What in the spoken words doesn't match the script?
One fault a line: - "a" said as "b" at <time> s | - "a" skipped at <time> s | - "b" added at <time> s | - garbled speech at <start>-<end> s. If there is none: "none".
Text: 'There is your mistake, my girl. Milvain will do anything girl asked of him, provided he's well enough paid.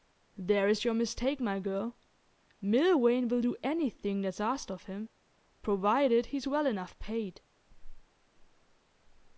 - "girl" said as "that's" at 4.2 s